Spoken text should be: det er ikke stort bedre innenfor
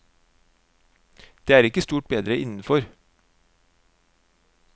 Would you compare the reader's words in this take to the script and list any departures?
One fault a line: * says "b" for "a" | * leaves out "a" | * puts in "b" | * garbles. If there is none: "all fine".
all fine